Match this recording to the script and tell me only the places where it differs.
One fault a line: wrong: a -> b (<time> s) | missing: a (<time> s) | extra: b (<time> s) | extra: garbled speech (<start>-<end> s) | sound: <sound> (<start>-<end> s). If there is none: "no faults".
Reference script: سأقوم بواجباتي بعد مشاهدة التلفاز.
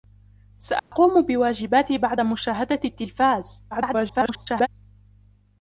sound: dropout (0.8-0.9 s)
extra: garbled speech (3.7-4.7 s)